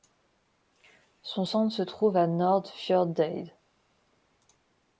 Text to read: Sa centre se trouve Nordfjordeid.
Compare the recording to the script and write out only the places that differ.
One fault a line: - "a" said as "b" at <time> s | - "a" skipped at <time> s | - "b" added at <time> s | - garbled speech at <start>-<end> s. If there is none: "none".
- "Sa" said as "Son" at 1.2 s
- "à" added at 2.2 s